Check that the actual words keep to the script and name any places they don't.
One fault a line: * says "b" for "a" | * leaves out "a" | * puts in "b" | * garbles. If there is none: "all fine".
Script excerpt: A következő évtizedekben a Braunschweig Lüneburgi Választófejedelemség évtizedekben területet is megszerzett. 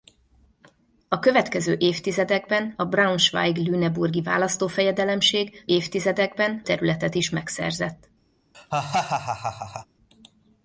all fine